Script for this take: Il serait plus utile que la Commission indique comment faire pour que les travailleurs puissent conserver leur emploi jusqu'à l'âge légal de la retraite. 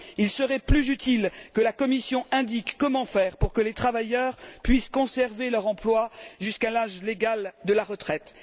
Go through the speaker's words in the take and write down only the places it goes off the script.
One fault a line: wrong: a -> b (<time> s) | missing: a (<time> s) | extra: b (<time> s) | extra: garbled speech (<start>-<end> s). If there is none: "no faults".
no faults